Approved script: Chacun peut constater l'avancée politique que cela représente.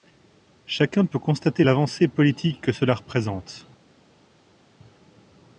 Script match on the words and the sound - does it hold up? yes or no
yes